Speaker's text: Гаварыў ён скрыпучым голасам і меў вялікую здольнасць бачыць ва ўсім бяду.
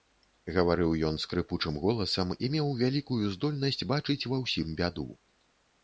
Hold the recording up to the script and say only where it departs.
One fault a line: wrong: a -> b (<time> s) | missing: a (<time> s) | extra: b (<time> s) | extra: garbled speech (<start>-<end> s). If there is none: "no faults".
no faults